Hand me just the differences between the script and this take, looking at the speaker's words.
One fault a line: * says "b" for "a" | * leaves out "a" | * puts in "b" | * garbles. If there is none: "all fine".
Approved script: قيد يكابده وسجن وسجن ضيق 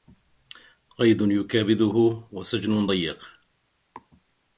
* leaves out "وسجن"